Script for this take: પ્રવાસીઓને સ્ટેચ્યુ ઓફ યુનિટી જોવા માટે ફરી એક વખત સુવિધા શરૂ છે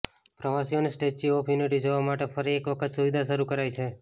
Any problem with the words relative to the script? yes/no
yes